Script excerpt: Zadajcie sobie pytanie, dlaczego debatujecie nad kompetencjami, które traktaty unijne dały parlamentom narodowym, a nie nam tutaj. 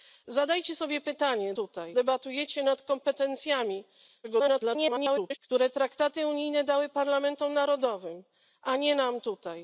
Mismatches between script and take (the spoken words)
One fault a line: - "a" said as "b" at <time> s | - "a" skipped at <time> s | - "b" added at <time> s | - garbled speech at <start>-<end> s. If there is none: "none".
- "dlaczego" said as "tutaj" at 1.5 s
- garbled speech at 4.2-5.4 s